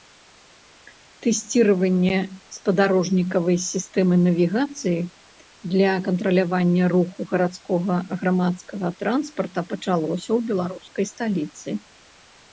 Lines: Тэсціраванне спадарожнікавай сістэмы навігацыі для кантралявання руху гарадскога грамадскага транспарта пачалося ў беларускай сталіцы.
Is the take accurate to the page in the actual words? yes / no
yes